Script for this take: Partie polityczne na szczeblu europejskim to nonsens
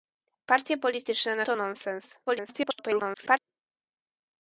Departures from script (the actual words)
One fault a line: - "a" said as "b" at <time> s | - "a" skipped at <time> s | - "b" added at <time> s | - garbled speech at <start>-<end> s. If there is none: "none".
- "szczeblu europejskim" skipped at 1.4 s
- garbled speech at 2.3-3.4 s